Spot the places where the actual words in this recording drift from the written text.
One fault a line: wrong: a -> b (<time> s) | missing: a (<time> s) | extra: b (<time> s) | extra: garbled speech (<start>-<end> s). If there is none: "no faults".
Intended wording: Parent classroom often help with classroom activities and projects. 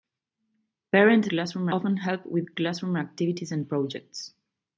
no faults